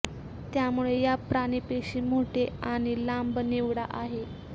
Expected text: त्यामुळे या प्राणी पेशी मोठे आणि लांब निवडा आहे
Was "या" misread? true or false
false